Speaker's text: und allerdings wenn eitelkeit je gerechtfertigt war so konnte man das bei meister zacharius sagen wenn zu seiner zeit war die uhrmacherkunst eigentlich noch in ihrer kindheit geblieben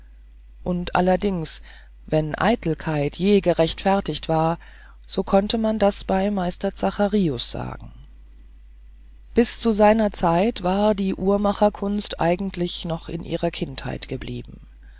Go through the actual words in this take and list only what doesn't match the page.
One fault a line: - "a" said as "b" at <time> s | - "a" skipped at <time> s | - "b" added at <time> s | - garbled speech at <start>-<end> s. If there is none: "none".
- "wenn" said as "bis" at 9.3 s